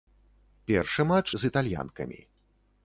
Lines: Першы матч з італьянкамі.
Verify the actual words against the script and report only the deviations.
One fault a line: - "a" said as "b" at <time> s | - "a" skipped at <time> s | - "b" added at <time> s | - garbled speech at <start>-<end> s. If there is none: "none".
none